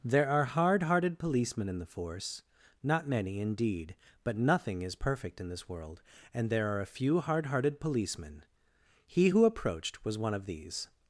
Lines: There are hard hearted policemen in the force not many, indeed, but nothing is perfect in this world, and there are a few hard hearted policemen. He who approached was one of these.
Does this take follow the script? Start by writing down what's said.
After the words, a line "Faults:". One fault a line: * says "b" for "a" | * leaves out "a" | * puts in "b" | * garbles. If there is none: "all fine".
There are hard hearted policemen in the force not many, indeed, but nothing is perfect in this world, and there are a few hard hearted policemen. He who approached was one of these.
Faults:
all fine